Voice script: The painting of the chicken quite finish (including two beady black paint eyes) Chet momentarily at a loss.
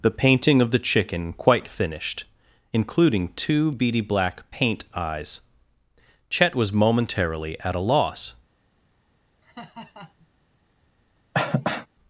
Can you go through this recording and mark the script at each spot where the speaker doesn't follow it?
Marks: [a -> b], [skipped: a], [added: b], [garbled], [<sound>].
The painting of the chicken quite [finish -> finished] (including two beady black paint eyes) Chet [added: was] momentarily at a loss. [laugh] [cough]